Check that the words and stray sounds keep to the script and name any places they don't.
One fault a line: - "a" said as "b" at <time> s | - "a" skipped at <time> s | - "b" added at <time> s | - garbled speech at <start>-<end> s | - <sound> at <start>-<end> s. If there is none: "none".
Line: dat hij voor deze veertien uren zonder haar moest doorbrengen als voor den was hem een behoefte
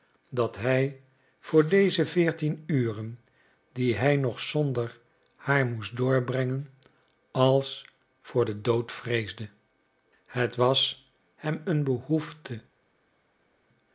- "die hij nog" added at 3.7 s
- "dood vreesde het" added at 8.6 s